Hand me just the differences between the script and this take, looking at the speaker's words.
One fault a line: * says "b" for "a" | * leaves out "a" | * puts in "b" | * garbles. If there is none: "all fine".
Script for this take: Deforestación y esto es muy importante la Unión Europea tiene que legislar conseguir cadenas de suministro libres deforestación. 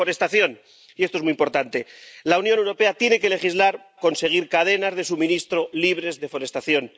all fine